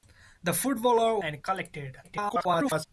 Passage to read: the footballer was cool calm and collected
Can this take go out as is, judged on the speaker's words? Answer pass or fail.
fail